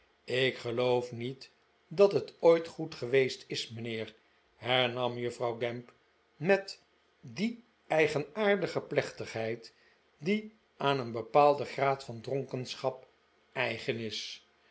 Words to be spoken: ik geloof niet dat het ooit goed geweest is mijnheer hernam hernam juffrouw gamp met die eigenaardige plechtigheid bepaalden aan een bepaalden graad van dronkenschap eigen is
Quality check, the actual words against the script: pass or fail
fail